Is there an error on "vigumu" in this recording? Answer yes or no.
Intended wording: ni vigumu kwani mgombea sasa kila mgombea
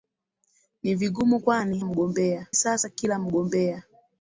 no